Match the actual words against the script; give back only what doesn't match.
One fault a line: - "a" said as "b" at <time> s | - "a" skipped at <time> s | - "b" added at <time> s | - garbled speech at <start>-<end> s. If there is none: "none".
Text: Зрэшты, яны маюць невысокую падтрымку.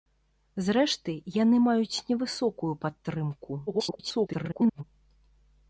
- garbled speech at 3.7-4.8 s